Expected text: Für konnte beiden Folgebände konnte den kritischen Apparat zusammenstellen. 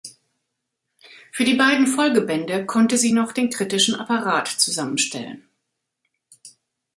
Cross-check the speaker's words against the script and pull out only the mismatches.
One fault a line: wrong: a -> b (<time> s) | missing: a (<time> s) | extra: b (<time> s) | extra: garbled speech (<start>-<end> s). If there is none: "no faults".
wrong: konnte -> die (1.4 s)
extra: sie noch (3.0 s)